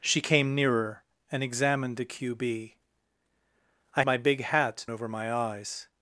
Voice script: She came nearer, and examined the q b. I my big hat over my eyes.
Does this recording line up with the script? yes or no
yes